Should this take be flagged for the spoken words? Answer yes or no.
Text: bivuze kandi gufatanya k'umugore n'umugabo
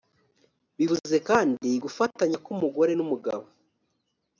no